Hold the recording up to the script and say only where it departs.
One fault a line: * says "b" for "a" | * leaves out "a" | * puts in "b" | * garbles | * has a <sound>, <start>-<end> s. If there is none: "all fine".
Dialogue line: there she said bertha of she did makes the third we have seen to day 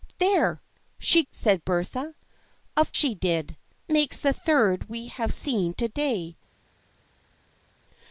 all fine